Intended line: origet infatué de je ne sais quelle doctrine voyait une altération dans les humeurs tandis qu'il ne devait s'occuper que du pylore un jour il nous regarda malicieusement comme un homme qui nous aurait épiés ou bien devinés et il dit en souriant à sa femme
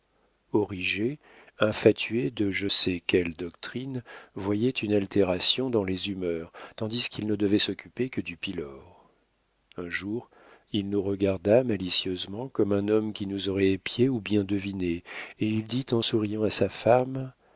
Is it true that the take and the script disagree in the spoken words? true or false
true